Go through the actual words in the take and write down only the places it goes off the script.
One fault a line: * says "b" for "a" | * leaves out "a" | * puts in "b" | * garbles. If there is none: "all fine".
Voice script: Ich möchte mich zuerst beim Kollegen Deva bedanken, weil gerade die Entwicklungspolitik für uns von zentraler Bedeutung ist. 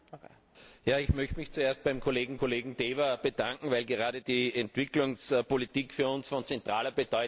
* puts in "Kollegen"